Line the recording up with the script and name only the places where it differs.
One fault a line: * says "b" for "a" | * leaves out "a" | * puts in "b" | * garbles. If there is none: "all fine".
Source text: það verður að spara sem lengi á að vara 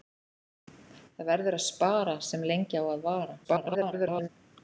* garbles